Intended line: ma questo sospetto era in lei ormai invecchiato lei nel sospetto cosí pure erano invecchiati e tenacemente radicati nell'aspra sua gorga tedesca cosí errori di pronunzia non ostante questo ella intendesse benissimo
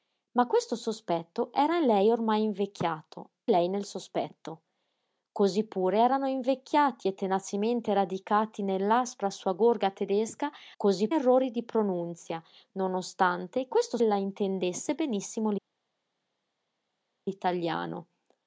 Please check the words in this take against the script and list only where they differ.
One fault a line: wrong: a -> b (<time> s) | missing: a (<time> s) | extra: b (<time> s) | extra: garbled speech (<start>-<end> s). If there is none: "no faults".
no faults